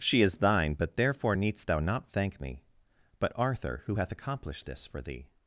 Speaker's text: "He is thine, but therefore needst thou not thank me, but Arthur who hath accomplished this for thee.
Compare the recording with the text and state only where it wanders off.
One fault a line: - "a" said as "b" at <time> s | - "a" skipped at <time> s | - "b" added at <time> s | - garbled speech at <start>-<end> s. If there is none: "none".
- "He" said as "She" at 0.0 s